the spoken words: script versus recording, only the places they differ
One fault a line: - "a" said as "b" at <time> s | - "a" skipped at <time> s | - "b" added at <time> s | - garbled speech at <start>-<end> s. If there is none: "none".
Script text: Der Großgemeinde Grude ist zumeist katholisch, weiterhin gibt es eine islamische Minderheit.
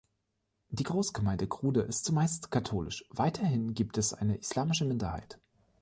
- "Der" said as "Die" at 0.7 s